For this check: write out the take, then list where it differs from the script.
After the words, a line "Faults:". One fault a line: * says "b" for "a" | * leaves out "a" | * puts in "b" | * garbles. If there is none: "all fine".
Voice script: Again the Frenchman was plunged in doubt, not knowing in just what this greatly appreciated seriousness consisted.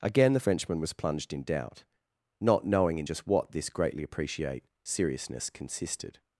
Again the Frenchman was plunged in doubt, not knowing in just what this greatly appreciate seriousness consisted.
Faults:
* says "appreciate" for "appreciated"